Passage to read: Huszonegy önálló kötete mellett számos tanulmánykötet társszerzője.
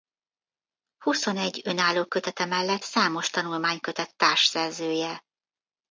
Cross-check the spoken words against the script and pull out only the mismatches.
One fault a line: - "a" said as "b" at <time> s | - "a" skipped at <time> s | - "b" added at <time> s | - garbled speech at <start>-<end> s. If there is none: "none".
none